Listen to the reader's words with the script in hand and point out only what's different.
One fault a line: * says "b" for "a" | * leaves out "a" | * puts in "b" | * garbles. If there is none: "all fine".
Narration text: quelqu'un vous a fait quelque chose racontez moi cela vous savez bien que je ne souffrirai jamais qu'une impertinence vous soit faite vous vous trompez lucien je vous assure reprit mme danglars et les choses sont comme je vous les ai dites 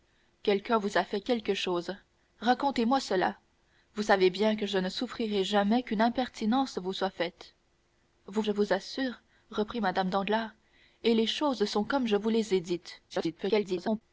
* leaves out "vous trompez lucien"
* garbles